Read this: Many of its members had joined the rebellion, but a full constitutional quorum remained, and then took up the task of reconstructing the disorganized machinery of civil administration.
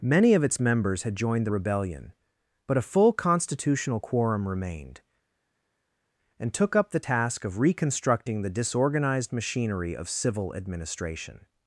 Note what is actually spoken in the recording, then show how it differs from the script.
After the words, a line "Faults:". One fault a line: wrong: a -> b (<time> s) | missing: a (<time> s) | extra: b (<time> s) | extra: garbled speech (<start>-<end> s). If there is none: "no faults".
Many of its members had joined the rebellion, but a full constitutional quorum remained, and took up the task of reconstructing the disorganized machinery of civil administration.
Faults:
missing: then (6.5 s)